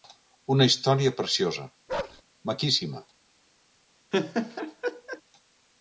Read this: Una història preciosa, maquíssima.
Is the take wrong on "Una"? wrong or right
right